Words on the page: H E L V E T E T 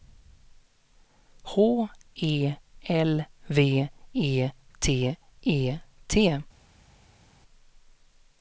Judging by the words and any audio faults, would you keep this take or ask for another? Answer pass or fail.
pass